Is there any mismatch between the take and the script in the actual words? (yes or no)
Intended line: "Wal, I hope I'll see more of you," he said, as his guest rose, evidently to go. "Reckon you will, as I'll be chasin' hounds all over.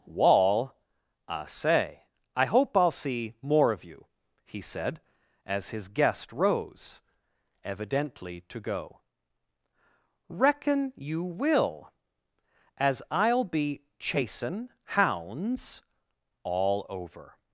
yes